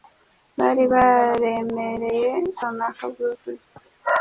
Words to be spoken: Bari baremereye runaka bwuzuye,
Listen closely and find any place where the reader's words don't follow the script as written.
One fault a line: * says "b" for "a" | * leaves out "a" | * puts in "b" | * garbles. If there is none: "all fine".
all fine